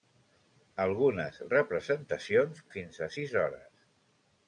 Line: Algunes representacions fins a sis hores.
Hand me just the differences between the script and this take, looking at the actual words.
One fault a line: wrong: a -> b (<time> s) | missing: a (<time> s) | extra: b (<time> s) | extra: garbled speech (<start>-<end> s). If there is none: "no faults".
no faults